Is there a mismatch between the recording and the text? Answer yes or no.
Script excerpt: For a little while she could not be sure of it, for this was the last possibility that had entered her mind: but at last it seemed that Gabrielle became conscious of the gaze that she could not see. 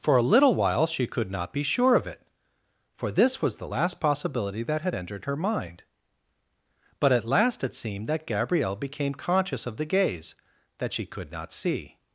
no